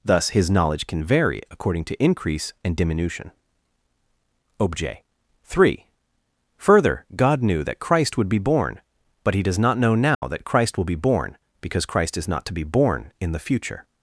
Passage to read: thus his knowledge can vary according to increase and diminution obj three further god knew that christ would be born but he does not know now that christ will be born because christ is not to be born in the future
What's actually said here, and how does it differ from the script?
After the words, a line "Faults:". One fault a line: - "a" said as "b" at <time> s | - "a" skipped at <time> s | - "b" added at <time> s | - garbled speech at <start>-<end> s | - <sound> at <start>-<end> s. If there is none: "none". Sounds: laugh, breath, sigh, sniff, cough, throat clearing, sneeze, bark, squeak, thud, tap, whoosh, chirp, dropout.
thus his knowledge can vary according to increase and diminution obj three further god knew that christ would be born but he does not know now that christ will be born because christ is not to be born in the future
Faults:
- dropout at 10.1-10.2 s